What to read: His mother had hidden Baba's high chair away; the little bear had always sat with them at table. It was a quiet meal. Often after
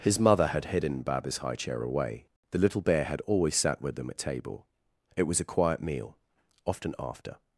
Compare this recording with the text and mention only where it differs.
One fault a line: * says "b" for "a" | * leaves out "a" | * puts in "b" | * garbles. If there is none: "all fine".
all fine